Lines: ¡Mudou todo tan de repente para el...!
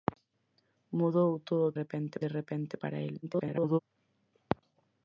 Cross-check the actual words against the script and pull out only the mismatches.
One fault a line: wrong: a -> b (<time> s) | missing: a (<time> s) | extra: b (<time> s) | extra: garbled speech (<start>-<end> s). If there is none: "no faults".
wrong: tan -> repente (1.8 s)
extra: garbled speech (3.2-3.8 s)